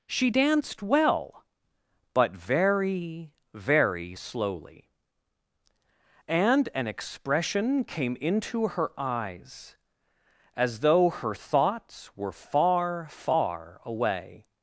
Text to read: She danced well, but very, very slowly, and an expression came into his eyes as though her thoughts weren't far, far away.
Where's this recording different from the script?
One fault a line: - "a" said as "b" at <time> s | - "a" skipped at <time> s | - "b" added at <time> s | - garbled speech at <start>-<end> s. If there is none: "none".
- "his" said as "her" at 8.7 s
- "weren't" said as "were" at 12.2 s